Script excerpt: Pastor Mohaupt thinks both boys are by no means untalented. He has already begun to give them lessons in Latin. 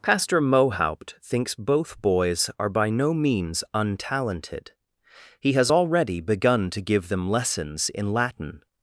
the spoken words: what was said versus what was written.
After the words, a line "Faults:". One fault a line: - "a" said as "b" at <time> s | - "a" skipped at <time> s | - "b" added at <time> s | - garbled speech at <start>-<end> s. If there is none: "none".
Pastor Mohaupt thinks both boys are by no means untalented. He has already begun to give them lessons in Latin.
Faults:
none